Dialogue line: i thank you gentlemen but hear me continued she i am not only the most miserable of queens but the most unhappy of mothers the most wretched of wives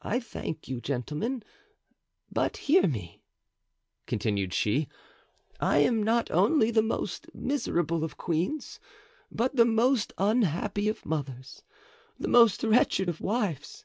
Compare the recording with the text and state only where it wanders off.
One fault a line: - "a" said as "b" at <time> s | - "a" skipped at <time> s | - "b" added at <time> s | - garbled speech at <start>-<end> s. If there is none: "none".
none